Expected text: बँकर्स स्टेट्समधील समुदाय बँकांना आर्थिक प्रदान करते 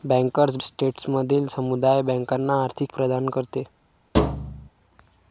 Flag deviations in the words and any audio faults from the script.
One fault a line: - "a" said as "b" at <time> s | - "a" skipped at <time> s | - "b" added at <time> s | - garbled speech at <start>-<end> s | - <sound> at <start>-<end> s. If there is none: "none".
- thud at 4.1-4.7 s